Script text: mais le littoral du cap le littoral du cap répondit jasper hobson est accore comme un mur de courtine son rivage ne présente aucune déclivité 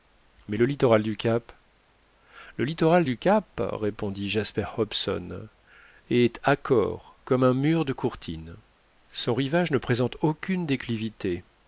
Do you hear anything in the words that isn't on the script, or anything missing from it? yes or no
no